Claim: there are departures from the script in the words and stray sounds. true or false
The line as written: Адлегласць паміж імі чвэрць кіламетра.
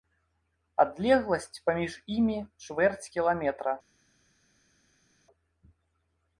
false